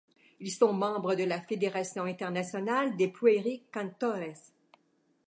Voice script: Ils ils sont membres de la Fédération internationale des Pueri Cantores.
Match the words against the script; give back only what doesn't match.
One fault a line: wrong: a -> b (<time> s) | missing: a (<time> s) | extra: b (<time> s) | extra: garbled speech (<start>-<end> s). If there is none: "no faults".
missing: ils (0.5 s)